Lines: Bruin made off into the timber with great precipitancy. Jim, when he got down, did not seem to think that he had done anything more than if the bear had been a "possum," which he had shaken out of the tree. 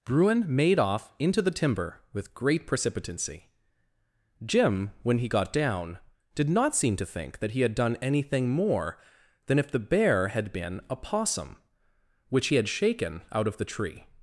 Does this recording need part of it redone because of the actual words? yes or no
no